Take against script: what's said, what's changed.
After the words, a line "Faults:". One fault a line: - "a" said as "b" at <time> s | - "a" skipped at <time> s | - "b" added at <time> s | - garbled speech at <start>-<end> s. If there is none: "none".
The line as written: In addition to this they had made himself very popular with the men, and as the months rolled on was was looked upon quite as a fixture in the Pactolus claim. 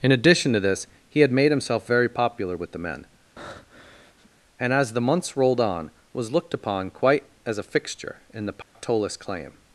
In addition to this he had made himself very popular with the men, and as the months rolled on was looked upon quite as a fixture in the Pactolus claim.
Faults:
- "they" said as "he" at 1.1 s
- "was" skipped at 6.3 s